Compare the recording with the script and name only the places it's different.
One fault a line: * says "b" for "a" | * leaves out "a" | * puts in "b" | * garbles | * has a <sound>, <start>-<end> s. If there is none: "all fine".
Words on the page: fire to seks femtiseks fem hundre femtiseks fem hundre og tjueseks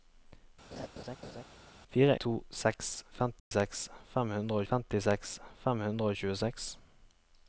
* has a laugh, 0.7-1.4 s
* has a dropout, 3.4-3.5 s